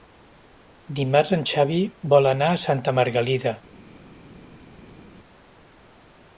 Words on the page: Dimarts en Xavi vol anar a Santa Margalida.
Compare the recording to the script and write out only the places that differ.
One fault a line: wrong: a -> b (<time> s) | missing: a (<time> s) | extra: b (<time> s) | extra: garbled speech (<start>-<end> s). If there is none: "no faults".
no faults